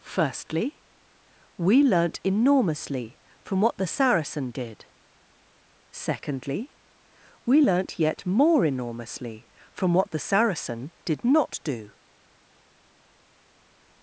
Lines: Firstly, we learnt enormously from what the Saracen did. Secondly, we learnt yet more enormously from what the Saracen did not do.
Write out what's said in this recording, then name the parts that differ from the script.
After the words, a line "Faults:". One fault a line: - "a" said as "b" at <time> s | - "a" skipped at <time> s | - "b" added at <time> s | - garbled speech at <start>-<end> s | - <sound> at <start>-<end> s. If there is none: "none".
Firstly, we learnt enormously from what the Saracen did. Secondly, we learnt yet more enormously from what the Saracen did not do.
Faults:
none